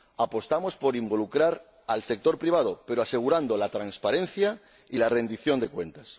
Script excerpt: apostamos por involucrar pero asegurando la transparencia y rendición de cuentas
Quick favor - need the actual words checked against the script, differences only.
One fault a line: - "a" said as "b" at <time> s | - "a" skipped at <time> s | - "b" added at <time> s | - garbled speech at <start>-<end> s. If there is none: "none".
- "al sector privado" added at 1.9 s
- "la" added at 5.0 s